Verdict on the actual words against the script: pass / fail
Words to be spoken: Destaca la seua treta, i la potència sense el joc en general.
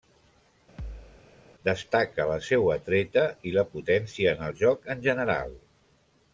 fail